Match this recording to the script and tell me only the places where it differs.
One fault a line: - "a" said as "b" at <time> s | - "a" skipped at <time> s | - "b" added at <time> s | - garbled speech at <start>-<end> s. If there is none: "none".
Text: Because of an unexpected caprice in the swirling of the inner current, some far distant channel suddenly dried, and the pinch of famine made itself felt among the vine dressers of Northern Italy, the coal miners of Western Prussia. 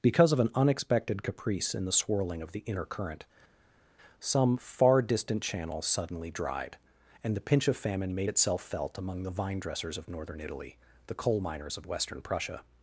none